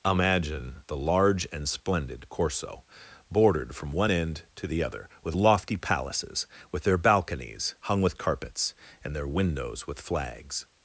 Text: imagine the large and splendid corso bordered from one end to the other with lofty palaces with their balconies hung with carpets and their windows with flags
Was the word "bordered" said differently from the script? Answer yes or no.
no